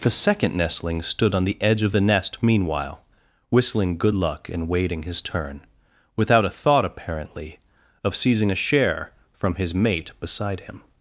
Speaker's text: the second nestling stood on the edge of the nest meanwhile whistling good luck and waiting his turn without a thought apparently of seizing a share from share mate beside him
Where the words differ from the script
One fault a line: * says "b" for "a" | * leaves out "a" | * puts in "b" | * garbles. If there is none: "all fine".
* says "his" for "share"